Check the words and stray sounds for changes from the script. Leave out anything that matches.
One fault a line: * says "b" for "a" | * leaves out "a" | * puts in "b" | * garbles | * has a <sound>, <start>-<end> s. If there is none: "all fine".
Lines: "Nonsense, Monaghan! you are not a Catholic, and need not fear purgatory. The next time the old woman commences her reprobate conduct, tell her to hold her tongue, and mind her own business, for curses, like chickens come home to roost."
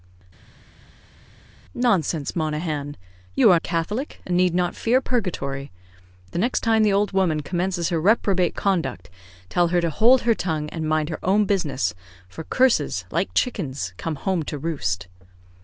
* leaves out "not"